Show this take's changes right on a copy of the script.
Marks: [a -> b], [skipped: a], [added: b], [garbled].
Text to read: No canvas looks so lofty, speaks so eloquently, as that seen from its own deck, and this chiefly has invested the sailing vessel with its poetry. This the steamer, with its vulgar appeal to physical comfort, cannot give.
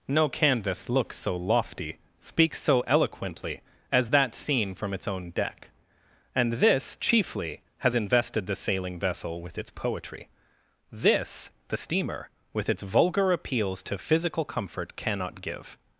No canvas looks so lofty, speaks so eloquently, as that seen from its own deck, and this chiefly has invested the sailing vessel with its poetry. This the steamer, with its vulgar [appeal -> appeals] to physical comfort, cannot give.